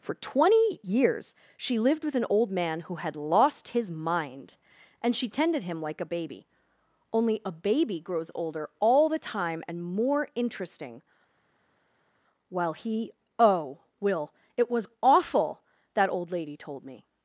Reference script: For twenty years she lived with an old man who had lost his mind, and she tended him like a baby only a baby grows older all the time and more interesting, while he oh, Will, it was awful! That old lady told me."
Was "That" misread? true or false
false